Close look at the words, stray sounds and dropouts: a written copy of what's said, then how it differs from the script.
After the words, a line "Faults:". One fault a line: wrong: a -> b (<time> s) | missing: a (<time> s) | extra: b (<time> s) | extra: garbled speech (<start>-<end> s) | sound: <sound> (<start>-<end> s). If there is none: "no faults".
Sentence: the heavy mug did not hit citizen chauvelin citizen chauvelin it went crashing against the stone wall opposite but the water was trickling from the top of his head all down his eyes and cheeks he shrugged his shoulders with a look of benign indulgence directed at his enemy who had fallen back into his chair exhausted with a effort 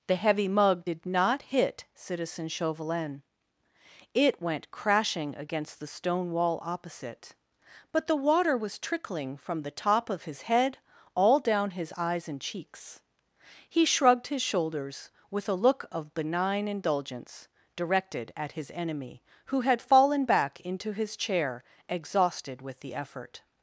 the heavy mug did not hit citizen chauvelin it went crashing against the stone wall opposite but the water was trickling from the top of his head all down his eyes and cheeks he shrugged his shoulders with a look of benign indulgence directed at his enemy who had fallen back into his chair exhausted with the effort
Faults:
missing: citizen chauvelin (3.2 s)
wrong: a -> the (22.8 s)